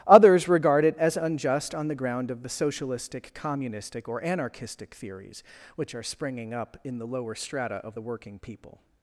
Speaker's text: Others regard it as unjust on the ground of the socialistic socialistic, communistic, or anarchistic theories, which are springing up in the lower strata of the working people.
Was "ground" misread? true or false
false